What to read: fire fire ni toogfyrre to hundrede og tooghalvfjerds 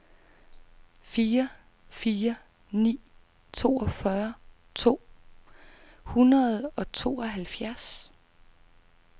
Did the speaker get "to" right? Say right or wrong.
right